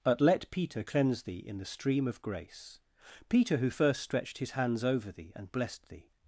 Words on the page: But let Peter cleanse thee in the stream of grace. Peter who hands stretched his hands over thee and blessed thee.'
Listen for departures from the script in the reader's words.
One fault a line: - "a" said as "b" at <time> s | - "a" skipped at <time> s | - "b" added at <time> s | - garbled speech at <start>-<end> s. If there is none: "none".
- "hands" said as "first" at 3.7 s